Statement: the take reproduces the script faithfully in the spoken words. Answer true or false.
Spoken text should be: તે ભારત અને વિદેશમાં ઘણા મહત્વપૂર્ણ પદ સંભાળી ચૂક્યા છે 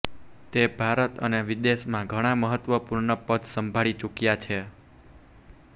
true